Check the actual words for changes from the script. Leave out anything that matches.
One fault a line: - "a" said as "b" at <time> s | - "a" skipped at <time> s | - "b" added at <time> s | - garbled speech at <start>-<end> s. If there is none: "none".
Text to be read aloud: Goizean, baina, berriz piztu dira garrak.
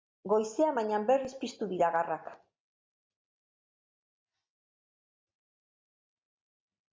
none